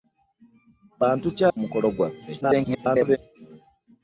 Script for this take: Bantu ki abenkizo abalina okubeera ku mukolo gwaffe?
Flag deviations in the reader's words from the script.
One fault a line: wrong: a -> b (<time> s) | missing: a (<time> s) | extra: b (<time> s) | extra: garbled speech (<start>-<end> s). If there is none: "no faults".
missing: abenkizo abalina okubeera (1.4 s)
extra: garbled speech (2.4-3.2 s)